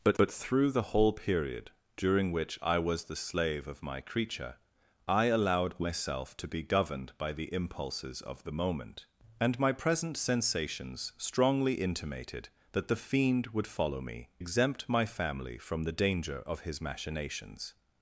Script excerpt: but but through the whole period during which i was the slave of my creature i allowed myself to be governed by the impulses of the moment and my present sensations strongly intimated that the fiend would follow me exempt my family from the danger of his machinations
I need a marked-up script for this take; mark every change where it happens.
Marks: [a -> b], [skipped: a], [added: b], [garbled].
but but through the whole period during which i was the slave of my creature i allowed myself to be governed by the impulses of the moment and my present sensations strongly intimated that the fiend would follow me exempt my family from the danger of his machinations